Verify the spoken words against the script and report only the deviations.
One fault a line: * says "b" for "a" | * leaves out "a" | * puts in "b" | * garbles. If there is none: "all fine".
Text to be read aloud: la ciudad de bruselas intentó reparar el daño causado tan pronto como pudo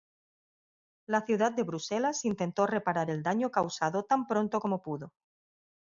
all fine